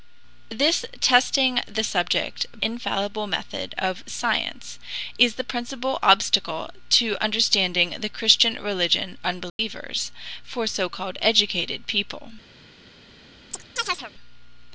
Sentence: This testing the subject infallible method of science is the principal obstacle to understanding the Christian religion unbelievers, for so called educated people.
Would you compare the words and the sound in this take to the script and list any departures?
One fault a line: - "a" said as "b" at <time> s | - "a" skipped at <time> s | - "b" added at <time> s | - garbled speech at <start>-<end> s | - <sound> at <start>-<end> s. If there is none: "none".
- dropout at 9.5-9.6 s
- chirp at 13.5-14.1 s